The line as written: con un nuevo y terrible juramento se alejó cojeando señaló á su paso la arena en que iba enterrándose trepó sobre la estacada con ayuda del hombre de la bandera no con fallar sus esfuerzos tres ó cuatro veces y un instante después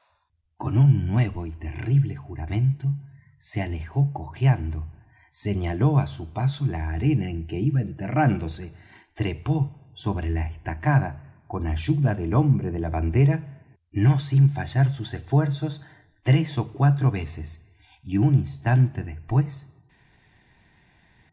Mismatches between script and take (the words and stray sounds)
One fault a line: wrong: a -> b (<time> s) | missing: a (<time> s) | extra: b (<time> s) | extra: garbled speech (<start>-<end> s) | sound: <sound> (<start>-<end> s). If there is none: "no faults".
wrong: con -> sin (14.2 s)